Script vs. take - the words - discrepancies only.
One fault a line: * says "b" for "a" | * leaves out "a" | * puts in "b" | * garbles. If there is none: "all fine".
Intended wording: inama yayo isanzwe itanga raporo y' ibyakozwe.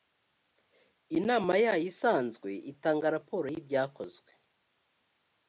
all fine